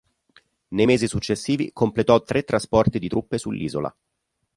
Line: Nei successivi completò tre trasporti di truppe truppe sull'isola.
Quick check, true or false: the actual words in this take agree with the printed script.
false